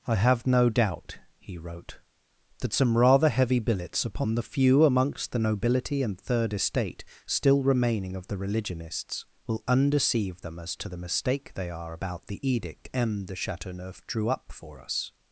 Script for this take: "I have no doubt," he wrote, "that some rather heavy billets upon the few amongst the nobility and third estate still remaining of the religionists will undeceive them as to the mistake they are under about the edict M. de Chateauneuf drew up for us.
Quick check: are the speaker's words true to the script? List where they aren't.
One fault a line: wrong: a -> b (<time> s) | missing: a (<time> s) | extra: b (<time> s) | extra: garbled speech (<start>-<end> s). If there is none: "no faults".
missing: under (11.9 s)